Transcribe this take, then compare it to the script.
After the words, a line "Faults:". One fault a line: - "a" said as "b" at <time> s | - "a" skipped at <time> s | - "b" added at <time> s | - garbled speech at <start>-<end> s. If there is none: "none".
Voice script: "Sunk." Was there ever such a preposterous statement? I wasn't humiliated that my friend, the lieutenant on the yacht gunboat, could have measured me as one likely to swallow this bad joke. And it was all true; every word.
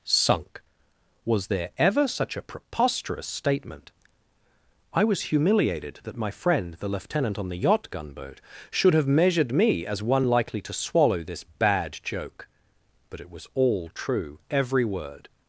"Sunk." Was there ever such a preposterous statement? I was humiliated that my friend, the lieutenant on the yacht gunboat, should have measured me as one likely to swallow this bad joke. But it was all true; every word.
Faults:
- "wasn't" said as "was" at 5.0 s
- "could" said as "should" at 8.7 s
- "And" said as "But" at 13.1 s